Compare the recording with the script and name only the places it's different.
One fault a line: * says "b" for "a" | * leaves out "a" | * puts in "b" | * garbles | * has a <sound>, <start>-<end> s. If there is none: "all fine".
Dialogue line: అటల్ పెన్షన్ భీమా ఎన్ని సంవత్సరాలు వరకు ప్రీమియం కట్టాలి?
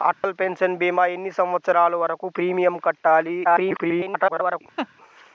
* has a dropout, 0.1-0.2 s
* garbles
* has a laugh, 4.8-4.9 s